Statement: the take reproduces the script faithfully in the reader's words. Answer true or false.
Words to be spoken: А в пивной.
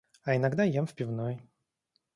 false